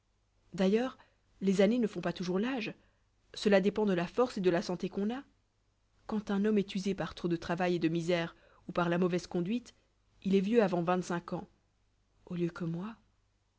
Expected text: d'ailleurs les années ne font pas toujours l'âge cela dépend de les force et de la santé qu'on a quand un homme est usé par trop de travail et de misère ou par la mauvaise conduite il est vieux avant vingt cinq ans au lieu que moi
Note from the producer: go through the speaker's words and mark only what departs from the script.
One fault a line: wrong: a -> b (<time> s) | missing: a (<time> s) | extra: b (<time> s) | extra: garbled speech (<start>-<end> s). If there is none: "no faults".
wrong: les -> la (3.9 s)